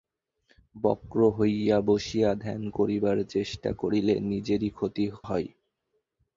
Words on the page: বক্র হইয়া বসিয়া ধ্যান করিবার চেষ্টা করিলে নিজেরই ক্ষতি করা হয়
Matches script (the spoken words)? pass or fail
fail